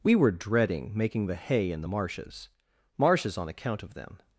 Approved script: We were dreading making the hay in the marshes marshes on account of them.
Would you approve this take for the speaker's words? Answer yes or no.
yes